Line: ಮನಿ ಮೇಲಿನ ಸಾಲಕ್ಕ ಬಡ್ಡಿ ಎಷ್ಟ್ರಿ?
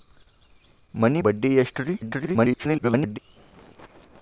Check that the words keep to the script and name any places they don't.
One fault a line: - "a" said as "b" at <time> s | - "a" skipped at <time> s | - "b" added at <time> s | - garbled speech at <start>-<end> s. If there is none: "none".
- "ಮೇಲಿನ ಸಾಲಕ್ಕ" skipped at 1.2 s
- garbled speech at 2.0-3.2 s